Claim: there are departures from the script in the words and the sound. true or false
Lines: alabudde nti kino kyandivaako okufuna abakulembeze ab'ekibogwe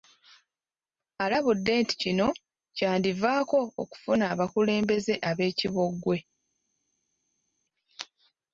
false